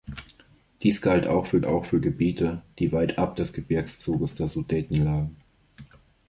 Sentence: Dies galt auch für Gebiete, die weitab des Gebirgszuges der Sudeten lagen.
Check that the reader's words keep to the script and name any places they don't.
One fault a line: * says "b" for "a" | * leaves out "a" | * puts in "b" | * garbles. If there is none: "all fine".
* puts in "auch für"